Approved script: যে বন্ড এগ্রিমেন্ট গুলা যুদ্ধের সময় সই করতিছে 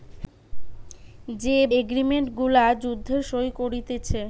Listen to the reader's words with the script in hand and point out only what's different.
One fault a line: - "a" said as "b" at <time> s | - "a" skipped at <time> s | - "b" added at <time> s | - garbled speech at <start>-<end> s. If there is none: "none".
- "বন্ড" skipped at 1.6 s
- "সময়" skipped at 3.2 s